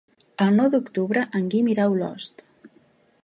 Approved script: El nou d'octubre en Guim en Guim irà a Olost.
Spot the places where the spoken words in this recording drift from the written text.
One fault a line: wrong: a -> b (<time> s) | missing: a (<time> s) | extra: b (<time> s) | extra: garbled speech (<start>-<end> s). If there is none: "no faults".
missing: en Guim (1.7 s)